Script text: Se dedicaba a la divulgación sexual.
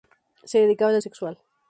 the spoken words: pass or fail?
fail